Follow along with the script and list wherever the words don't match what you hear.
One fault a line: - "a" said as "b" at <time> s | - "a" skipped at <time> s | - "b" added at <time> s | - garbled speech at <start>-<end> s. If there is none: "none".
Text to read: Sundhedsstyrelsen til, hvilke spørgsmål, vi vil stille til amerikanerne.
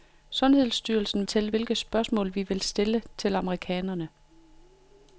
none